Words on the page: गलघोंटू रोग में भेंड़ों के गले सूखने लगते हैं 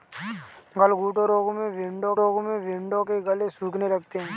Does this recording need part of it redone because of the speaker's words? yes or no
yes